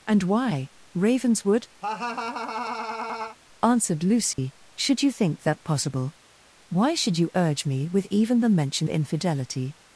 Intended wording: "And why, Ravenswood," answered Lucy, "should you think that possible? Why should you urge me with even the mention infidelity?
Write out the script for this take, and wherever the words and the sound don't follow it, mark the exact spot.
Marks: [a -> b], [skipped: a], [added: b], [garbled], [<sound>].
"And why, Ravenswood," [laugh] answered Lucy, [dropout] "should you think that possible? Why should you urge me with even the mention infidelity?